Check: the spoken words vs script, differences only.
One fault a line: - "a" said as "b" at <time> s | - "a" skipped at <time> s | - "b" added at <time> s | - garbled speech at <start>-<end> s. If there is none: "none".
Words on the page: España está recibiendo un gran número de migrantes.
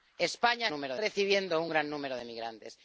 - "está" said as "número" at 0.7 s